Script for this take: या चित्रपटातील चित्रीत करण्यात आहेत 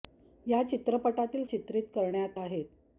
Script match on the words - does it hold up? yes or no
yes